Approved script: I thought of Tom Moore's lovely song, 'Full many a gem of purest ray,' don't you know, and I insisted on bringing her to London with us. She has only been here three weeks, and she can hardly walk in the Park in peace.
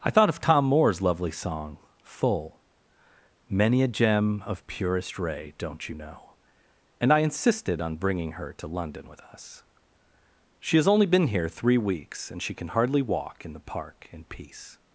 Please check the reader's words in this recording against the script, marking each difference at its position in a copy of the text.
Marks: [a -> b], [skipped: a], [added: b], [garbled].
I thought of Tom Moore's lovely song, 'Full many a gem of purest ray,' don't you know, and I insisted on bringing her to London with us. She has only been here three weeks, and she can hardly walk in the Park in peace.